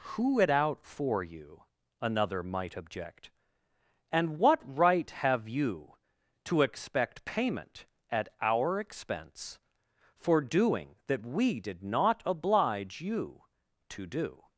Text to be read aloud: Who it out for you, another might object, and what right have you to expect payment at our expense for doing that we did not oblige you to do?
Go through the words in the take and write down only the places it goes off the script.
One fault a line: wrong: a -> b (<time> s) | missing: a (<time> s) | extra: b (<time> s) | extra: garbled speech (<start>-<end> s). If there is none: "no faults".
no faults